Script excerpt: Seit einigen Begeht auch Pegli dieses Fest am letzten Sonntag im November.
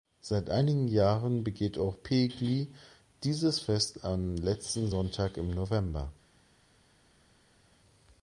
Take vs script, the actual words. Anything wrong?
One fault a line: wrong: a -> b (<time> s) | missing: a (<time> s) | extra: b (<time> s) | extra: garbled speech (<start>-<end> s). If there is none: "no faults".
extra: Jahren (0.9 s)